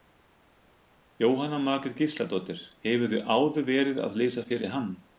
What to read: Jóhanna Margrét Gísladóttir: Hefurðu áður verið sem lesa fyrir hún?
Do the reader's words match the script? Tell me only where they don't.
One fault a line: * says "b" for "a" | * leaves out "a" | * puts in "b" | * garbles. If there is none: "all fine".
* says "að" for "sem"
* says "hann" for "hún"